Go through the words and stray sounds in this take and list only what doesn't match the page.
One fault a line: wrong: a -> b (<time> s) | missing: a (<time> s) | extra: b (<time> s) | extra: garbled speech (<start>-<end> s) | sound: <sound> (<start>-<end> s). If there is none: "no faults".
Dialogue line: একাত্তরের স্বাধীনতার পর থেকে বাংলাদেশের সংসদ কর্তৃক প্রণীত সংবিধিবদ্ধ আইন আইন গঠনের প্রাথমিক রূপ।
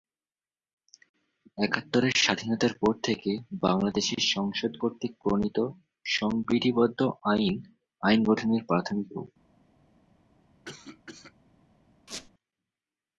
sound: cough (10.7-11.3 s)
sound: squeak (12.1-12.3 s)